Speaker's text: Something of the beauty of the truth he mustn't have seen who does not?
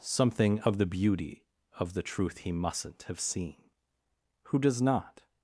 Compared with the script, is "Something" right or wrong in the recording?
right